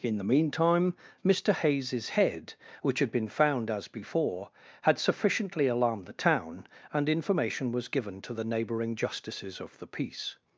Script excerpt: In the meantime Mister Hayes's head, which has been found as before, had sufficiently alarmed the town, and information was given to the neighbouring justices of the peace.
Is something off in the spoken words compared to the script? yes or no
yes